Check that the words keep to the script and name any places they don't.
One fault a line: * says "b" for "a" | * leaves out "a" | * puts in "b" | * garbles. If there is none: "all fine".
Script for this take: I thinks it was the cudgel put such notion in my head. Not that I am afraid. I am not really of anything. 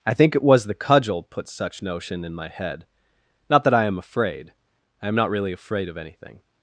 * says "think" for "thinks"
* puts in "afraid"